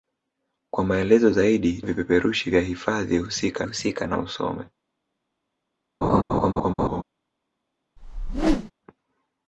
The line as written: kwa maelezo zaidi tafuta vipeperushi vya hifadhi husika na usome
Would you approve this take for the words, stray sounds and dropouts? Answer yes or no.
no